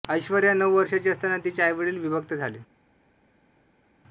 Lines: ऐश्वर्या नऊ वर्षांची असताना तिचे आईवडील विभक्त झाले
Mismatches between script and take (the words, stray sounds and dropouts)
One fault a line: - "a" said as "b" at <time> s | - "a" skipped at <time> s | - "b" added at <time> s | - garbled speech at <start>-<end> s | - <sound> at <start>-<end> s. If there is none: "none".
none